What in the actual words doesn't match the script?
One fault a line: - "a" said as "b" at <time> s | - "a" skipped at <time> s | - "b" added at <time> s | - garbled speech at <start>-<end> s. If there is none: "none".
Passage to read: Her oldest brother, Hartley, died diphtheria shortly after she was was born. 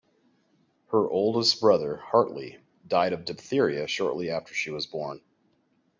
- "of" added at 3.1 s
- "was" skipped at 4.9 s